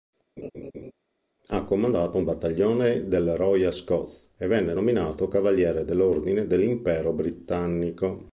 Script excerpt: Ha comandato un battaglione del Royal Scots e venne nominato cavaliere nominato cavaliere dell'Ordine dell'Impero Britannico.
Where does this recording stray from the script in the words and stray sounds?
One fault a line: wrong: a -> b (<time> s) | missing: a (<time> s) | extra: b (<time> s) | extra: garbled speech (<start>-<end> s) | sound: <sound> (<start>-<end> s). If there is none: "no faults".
sound: laugh (0.4-0.9 s)
missing: nominato cavaliere (5.8 s)